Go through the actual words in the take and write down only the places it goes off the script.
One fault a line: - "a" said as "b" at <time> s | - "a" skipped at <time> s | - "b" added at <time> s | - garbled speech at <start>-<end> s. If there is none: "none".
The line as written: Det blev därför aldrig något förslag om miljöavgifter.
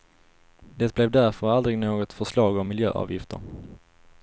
none